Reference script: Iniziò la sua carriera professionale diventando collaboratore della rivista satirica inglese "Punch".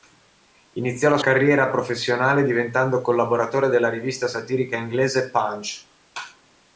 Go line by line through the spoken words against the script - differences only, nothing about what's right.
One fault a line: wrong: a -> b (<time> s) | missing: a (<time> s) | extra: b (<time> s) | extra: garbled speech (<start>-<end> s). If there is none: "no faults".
missing: sua (1.2 s)